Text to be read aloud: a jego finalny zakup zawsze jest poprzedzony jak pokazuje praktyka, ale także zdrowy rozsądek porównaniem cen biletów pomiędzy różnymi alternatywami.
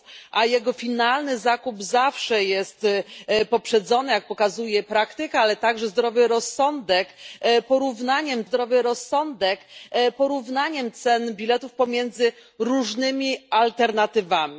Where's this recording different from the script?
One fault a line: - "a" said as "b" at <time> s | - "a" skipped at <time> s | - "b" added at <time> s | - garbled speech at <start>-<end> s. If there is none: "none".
- "zdrowy rozsądek porównaniem" added at 8.4 s